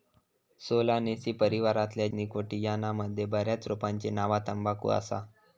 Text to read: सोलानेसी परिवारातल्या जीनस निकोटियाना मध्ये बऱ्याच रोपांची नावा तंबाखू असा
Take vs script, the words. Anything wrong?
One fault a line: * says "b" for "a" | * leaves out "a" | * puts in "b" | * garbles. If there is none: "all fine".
* leaves out "जीनस"